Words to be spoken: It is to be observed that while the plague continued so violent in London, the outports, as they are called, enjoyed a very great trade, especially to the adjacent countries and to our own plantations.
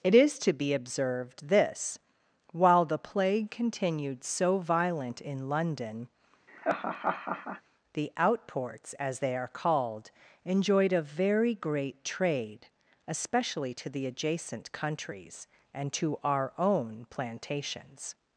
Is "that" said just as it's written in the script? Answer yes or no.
no